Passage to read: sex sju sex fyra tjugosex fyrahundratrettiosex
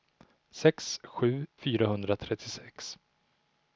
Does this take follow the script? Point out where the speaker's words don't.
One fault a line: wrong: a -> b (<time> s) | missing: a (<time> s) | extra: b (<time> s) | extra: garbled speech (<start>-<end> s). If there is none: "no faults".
missing: sex fyra tjugosex (1.4 s)